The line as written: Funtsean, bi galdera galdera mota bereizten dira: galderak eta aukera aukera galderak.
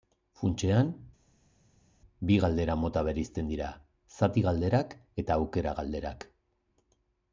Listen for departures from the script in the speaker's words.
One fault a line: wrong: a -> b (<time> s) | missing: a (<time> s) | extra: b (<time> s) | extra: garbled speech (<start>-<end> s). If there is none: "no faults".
missing: galdera (2.8 s)
extra: zati (4.2 s)
missing: aukera (5.8 s)